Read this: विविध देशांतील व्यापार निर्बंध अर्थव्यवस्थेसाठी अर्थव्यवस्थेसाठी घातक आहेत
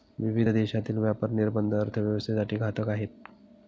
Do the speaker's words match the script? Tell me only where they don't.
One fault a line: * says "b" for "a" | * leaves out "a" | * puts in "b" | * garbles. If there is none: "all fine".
* leaves out "अर्थव्यवस्थेसाठी"